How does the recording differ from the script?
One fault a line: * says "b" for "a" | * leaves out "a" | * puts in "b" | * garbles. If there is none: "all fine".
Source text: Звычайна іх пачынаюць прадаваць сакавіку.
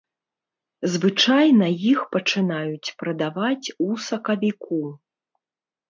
* puts in "у"